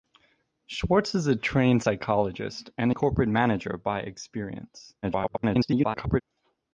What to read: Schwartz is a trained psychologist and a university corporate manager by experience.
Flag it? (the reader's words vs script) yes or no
yes